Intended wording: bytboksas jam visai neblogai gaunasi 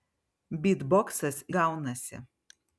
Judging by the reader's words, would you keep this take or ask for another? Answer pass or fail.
fail